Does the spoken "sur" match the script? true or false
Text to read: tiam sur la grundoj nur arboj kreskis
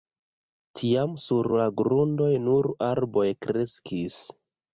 true